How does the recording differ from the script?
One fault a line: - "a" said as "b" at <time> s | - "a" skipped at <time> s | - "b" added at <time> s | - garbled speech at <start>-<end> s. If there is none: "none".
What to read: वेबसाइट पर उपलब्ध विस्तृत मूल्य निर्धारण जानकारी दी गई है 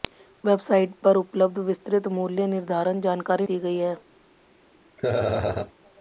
none